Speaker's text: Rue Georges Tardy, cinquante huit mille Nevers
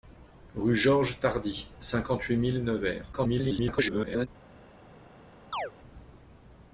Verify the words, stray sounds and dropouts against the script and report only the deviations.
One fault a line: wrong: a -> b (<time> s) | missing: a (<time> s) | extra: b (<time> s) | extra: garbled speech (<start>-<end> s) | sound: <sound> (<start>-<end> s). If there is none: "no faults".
extra: garbled speech (3.1-4.3 s)
sound: chirp (5.5-5.7 s)